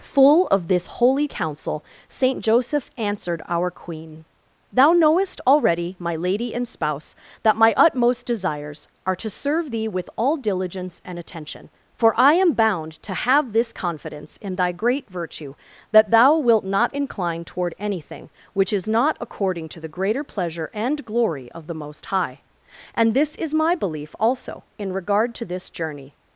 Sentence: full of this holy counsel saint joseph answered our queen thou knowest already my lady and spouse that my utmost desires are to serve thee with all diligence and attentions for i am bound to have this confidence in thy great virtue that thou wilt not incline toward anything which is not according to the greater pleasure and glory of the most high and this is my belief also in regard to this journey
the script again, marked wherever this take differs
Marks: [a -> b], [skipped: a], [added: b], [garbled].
full of this holy counsel saint joseph answered our queen thou knowest already my lady and spouse that my utmost desires are to serve thee with all diligence and [attentions -> attention] for i am bound to have this confidence in thy great virtue that thou wilt not incline toward anything which is not according to the greater pleasure and glory of the most high and this is my belief also in regard to this journey